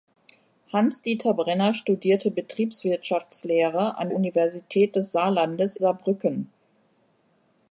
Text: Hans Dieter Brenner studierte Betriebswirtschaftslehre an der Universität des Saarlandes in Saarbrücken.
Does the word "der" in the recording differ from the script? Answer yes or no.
yes